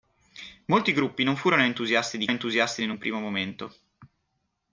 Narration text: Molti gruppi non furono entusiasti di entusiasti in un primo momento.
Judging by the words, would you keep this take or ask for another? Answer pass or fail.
pass